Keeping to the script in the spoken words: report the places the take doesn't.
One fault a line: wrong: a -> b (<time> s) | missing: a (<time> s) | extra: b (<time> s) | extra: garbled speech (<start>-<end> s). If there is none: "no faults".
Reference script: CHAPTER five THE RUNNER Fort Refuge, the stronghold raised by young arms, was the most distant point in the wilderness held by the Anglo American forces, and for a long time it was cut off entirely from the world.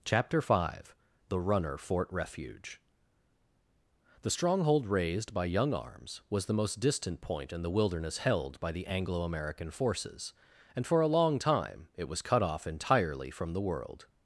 no faults